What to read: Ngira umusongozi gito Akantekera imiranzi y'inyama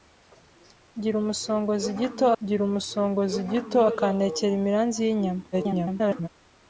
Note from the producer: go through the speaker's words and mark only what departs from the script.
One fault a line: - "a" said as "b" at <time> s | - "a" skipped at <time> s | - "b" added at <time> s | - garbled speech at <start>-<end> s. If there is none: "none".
- "ngira umusongozi gito" added at 2.4 s
- garbled speech at 5.5-6.3 s